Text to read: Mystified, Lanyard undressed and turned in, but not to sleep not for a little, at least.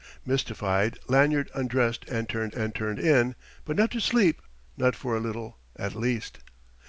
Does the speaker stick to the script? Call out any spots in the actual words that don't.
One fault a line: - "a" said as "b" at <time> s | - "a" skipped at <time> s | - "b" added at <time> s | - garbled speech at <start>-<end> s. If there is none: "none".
- "and turned" added at 2.5 s